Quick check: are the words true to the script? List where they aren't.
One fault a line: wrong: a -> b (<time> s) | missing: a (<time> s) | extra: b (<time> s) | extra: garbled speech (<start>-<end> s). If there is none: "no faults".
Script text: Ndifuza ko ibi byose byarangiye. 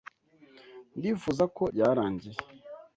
missing: ibi byose (1.6 s)